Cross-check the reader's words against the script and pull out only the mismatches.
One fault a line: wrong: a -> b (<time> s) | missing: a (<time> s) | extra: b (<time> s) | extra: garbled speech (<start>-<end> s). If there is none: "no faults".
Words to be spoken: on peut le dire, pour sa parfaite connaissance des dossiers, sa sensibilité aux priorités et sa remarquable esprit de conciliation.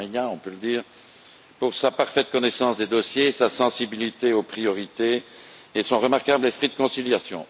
wrong: sa -> son (5.8 s)